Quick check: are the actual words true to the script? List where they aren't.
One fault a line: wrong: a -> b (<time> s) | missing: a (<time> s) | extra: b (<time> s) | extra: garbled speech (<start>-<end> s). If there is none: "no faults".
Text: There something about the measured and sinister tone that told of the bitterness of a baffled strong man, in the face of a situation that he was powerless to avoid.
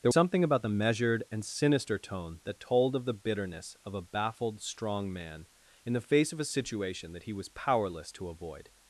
no faults